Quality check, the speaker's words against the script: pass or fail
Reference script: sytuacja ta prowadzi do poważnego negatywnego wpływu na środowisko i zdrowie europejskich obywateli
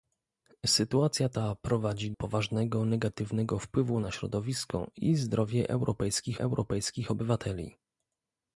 fail